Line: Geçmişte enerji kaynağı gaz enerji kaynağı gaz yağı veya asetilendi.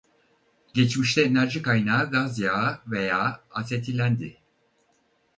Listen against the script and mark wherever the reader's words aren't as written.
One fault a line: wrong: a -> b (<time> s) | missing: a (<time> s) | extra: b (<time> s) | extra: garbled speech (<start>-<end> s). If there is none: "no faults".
missing: enerji kaynağı gaz (2.4 s)